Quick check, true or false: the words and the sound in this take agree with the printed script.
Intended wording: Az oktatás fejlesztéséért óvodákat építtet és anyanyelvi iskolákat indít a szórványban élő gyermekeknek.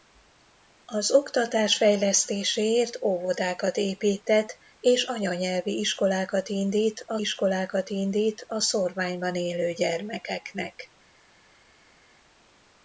false